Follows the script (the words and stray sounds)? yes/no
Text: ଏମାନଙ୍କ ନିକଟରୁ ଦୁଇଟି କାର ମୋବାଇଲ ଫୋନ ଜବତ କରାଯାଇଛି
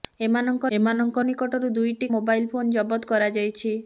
no